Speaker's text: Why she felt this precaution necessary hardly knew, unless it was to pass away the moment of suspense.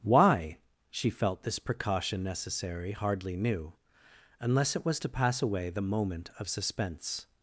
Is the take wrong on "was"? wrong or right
right